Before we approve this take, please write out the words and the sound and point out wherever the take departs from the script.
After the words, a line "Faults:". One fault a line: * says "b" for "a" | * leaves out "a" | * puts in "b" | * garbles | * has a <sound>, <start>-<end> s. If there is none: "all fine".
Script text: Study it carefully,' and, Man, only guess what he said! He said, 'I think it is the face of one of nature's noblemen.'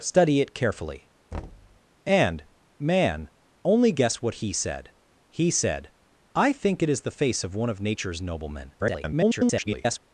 Study it carefully,' and, Man, only guess what he said! He said, 'I think it is the face of one of nature's noblemen.' [garbled]
Faults:
* has a thud, 1.3-1.8 s
* garbles